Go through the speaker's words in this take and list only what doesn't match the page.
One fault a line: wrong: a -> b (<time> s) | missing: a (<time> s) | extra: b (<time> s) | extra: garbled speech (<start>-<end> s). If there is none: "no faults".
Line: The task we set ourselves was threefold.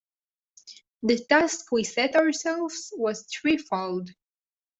no faults